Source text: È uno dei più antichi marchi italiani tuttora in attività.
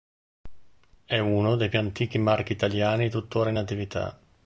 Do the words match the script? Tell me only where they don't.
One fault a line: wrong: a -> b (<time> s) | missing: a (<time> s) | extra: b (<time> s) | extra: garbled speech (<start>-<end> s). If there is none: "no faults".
no faults